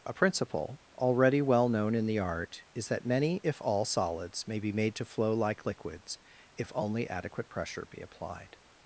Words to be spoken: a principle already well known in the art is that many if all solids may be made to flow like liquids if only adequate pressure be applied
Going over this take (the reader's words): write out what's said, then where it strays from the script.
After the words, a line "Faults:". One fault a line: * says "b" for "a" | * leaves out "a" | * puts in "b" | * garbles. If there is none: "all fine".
a principle already well known in the art is that many if all solids may be made to flow like liquids if only adequate pressure be applied
Faults:
all fine